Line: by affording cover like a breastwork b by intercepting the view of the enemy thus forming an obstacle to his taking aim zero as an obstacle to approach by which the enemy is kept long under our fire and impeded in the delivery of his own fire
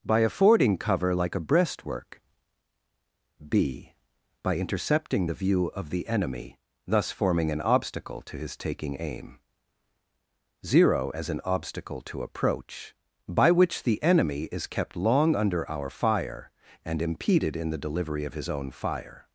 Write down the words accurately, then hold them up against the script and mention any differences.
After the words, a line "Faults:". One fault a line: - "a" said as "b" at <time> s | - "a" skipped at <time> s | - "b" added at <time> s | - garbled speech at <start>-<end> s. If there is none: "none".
by affording cover like a breastwork b by intercepting the view of the enemy thus forming an obstacle to his taking aim zero as an obstacle to approach by which the enemy is kept long under our fire and impeded in the delivery of his own fire
Faults:
none